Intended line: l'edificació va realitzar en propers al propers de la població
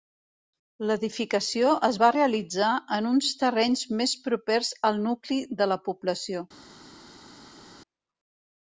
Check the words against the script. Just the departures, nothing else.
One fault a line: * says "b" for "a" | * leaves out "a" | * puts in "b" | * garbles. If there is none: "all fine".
* puts in "es"
* puts in "uns terrenys més"
* says "nucli" for "propers"